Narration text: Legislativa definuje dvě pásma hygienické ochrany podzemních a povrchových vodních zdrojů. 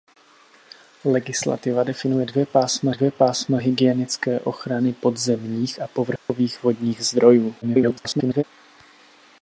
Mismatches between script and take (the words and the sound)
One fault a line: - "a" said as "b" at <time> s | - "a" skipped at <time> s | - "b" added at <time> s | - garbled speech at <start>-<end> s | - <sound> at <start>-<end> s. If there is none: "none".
- "dvě pásma" added at 2.9 s
- dropout at 6.2-6.3 s
- garbled speech at 7.6-8.4 s